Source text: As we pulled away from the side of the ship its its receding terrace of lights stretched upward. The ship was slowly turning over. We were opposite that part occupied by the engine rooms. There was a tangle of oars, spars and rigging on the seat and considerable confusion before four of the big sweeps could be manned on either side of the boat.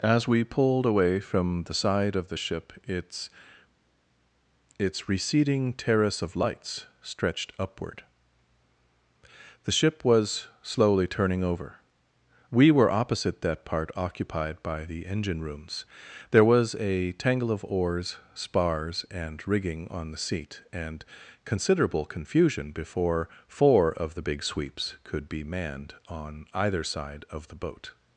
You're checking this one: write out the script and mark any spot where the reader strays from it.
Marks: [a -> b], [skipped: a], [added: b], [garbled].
As we pulled away from the side of the ship its its receding terrace of lights stretched upward. The ship was slowly turning over. We were opposite that part occupied by the engine rooms. There was a tangle of oars, spars and rigging on the seat and considerable confusion before four of the big sweeps could be manned on either side of the boat.